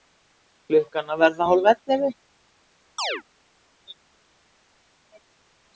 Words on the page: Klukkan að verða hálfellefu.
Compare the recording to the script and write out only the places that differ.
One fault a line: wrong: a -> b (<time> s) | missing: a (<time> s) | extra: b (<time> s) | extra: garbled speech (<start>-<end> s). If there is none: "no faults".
no faults